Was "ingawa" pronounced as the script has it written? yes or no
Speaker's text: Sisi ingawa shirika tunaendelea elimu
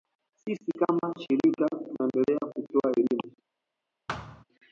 no